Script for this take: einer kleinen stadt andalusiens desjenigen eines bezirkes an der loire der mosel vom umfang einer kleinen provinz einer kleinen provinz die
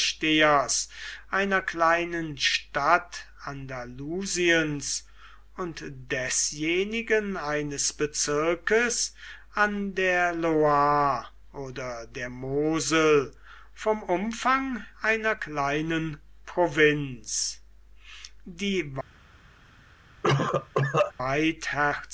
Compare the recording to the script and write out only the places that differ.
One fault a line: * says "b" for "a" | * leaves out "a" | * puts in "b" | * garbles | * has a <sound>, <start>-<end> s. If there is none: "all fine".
* puts in "und"
* puts in "oder"
* leaves out "einer kleinen provinz"
* has a cough, 20.2-21.1 s